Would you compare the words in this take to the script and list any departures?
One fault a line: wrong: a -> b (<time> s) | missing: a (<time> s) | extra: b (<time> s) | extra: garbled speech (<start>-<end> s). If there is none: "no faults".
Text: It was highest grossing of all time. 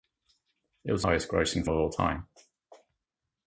no faults